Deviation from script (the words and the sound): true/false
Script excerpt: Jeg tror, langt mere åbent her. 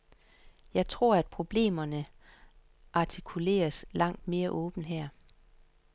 true